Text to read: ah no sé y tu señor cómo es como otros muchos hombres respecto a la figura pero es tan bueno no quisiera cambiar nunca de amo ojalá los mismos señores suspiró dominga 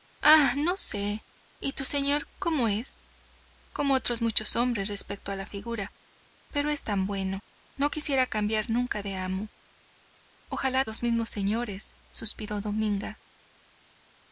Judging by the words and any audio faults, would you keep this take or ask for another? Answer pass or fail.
pass